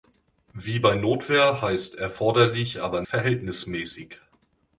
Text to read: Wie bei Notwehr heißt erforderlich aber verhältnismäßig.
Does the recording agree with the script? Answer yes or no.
yes